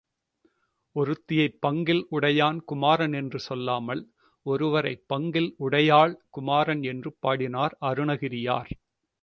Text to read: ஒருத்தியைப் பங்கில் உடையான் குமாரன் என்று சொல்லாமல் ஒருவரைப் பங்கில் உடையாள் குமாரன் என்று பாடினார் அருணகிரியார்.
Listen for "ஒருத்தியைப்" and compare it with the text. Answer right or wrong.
right